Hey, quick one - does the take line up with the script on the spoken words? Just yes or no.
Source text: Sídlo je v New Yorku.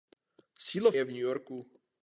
yes